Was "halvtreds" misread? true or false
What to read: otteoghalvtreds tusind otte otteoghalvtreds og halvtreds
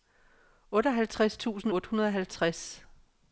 false